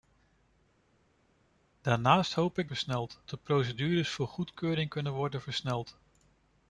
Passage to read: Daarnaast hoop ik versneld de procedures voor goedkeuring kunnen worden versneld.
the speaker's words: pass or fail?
pass